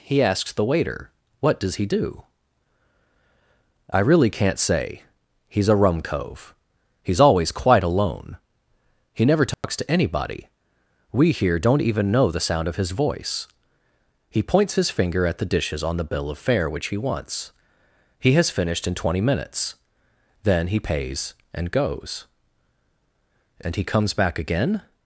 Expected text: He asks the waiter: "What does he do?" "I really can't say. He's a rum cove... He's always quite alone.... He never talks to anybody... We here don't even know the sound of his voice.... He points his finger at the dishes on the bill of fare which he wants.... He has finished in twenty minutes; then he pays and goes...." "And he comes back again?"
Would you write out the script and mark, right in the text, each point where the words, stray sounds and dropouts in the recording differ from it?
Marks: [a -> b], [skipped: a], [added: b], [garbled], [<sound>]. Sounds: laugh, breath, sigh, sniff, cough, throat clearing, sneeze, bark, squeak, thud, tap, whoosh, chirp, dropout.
He asks the waiter: "What does he do?" "I really can't say. He's a rum cove... He's always quite alone.... He never talks [dropout] to anybody... We here don't even know the sound of his voice.... He points his finger at the dishes on the bill of fare which he wants.... He has finished in twenty minutes; then he pays and goes...." "And he comes back again?"